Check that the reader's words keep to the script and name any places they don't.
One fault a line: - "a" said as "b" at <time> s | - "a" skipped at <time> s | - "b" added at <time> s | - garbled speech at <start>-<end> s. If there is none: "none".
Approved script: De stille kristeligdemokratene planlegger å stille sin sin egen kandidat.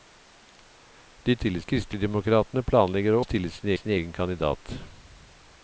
none